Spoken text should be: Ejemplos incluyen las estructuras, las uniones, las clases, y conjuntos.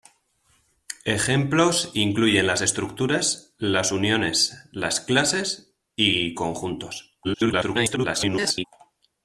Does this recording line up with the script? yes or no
no